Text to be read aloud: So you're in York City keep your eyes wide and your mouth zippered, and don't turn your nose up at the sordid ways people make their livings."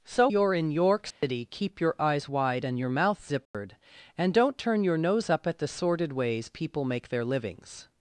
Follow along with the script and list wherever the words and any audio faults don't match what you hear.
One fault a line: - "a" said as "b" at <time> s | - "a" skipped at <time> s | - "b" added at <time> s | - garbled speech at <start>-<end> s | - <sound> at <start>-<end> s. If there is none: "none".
- dropout at 1.1-1.2 s
- dropout at 3.5-3.5 s